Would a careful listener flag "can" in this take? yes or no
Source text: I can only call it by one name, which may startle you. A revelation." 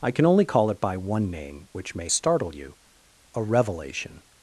no